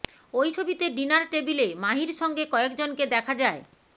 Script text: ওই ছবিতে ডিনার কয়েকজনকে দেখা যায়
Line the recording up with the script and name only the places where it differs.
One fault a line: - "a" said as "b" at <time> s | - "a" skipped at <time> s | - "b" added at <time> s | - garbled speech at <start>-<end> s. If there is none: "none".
- "টেবিলে মাহির সঙ্গে" added at 1.3 s